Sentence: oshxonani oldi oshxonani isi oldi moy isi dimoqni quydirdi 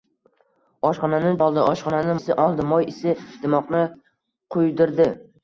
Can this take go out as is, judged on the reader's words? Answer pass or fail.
pass